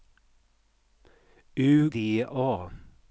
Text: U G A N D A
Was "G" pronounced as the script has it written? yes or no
no